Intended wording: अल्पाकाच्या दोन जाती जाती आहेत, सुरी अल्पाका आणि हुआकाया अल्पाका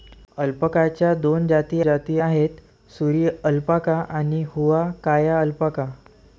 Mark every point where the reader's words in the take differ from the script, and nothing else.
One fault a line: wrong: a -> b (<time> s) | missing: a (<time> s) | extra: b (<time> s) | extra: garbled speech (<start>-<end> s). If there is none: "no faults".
no faults